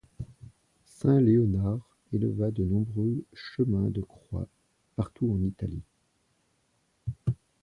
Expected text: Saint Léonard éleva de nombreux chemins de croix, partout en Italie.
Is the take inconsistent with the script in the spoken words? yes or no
no